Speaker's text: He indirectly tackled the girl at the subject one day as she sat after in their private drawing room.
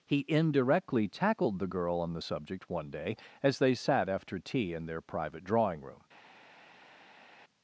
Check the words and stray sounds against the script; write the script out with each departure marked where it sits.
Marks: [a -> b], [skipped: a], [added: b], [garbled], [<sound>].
He indirectly tackled the girl [at -> on] the subject one day as [she -> they] sat after [added: tea] in their private drawing room.